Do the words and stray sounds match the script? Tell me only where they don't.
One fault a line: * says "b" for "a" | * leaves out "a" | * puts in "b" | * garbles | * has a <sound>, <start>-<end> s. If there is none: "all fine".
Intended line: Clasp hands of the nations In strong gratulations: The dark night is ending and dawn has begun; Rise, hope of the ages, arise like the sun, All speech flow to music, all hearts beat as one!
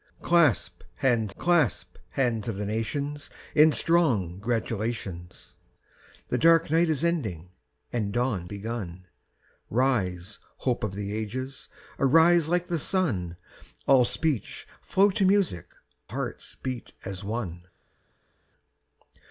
* puts in "clasp hands"
* leaves out "has"
* leaves out "all"